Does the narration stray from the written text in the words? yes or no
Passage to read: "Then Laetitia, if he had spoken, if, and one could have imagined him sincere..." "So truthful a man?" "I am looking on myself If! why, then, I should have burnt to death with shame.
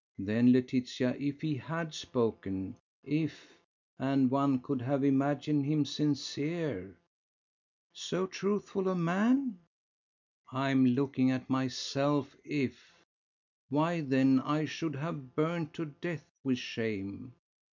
yes